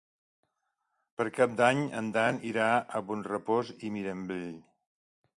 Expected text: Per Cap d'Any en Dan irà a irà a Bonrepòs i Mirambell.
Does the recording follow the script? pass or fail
fail